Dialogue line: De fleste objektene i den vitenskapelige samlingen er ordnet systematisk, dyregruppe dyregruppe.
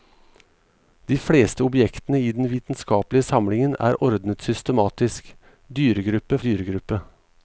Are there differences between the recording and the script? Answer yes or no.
no